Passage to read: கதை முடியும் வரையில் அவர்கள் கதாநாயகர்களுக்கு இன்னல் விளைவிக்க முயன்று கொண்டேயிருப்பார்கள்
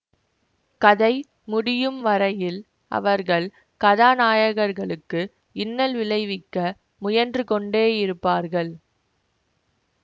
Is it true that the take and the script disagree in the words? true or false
false